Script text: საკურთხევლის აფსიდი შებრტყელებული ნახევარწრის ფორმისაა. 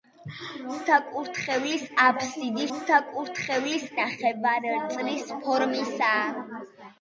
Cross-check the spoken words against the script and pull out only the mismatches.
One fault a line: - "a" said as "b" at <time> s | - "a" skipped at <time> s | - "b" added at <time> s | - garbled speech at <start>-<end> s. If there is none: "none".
- "შებრტყელებული" said as "საკურთხევლის" at 2.8 s